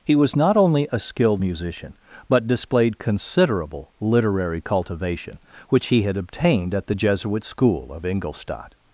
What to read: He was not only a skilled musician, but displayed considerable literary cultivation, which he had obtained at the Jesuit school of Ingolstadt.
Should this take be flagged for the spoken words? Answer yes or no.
no